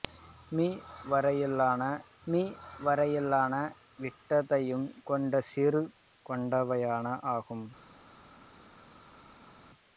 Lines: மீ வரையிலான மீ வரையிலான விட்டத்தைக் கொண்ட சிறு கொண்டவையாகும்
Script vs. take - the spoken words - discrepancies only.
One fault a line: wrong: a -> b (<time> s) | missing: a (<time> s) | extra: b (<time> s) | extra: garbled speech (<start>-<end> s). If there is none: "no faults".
no faults